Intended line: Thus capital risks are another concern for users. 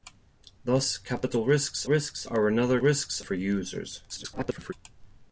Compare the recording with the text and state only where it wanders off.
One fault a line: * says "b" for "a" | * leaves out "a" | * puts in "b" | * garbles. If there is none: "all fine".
* puts in "risks"
* says "risks" for "concern"
* garbles